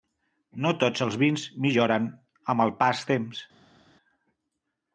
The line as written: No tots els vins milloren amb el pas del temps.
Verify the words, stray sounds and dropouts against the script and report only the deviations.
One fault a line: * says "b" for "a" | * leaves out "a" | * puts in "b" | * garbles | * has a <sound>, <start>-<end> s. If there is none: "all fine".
* leaves out "del"